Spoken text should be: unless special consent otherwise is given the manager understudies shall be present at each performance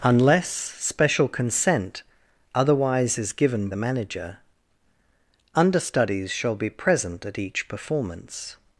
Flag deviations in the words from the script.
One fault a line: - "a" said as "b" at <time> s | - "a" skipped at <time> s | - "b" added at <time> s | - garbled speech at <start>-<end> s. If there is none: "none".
none